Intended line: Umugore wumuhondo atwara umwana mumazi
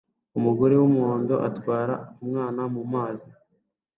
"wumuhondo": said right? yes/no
yes